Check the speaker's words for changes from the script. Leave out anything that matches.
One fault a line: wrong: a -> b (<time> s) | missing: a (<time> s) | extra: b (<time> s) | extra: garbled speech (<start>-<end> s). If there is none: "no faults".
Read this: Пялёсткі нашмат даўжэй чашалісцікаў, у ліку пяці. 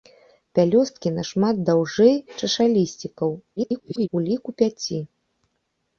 extra: garbled speech (3.6-4.1 s)